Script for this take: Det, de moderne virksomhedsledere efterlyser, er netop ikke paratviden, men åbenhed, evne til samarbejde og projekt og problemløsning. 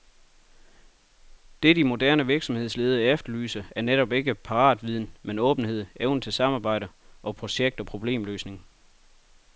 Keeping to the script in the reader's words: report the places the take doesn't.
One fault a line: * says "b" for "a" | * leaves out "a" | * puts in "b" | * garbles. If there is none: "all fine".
all fine